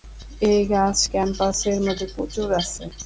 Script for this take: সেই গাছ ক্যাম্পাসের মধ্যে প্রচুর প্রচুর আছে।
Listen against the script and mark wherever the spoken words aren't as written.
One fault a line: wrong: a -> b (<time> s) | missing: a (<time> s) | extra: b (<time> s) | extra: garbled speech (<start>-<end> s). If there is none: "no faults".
wrong: সেই -> এই (0.4 s)
missing: প্রচুর (2.5 s)